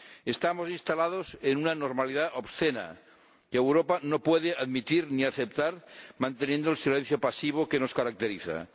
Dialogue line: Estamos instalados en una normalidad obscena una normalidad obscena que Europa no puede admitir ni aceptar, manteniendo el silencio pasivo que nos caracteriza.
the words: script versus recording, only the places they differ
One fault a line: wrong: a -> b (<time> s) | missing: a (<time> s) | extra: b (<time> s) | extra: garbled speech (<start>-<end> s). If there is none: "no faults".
missing: una normalidad obscena (3.0 s)